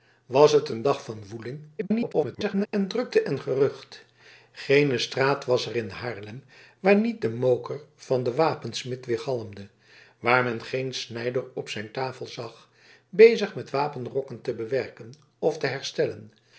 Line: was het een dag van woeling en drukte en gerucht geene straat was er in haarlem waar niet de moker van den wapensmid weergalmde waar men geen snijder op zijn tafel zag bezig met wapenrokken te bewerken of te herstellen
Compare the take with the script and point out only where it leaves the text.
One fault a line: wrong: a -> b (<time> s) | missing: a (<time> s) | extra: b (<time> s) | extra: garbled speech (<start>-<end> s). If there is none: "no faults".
extra: garbled speech (1.8-2.7 s)